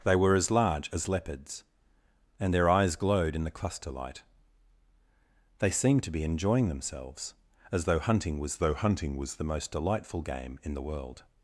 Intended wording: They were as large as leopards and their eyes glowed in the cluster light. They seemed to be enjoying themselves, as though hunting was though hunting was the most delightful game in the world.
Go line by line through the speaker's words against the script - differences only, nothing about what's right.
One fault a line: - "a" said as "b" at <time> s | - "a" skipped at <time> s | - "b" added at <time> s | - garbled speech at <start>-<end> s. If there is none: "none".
none